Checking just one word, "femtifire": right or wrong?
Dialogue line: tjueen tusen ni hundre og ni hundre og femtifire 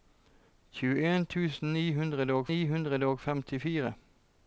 right